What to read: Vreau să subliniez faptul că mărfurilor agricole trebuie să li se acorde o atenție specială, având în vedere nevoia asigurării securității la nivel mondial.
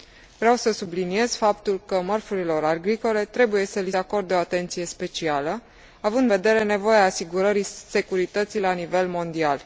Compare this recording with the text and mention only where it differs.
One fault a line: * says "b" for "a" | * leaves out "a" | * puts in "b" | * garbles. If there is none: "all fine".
* leaves out "se"
* leaves out "în"